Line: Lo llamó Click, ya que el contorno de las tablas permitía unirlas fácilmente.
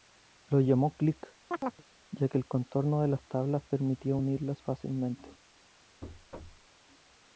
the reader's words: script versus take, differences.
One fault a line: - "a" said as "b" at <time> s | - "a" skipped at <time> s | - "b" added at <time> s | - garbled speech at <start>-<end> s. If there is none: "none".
none